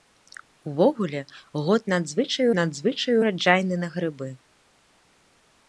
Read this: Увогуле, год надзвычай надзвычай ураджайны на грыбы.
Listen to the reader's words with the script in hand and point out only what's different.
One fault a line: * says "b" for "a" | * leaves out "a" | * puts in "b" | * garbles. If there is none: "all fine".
all fine